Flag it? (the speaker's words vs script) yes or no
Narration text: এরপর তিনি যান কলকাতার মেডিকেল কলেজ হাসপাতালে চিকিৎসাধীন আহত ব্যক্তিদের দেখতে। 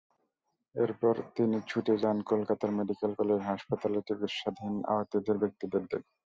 yes